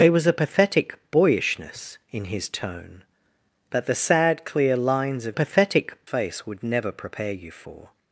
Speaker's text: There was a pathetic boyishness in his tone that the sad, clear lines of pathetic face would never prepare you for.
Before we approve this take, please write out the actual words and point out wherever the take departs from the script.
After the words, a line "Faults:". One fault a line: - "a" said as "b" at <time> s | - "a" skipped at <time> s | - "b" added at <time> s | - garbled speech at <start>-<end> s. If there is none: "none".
There was a pathetic boyishness in his tone that the sad, clear lines of pathetic face would never prepare you for.
Faults:
none